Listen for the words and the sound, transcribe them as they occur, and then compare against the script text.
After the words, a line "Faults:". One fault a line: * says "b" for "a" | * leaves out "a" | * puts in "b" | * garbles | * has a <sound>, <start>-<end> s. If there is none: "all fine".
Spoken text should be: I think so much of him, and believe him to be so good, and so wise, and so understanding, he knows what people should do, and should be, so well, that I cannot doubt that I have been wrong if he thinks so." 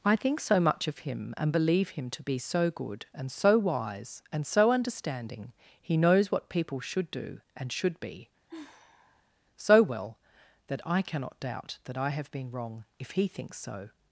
I think so much of him, and believe him to be so good, and so wise, and so understanding, he knows what people should do, and should be, so well, that I cannot doubt that I have been wrong if he thinks so."
Faults:
* has a sigh, 8.5-9.3 s